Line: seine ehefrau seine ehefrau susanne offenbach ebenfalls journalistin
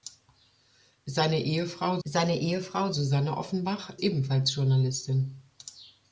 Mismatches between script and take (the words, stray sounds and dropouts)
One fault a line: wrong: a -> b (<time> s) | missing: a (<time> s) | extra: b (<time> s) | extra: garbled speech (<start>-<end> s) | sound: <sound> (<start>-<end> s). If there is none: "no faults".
no faults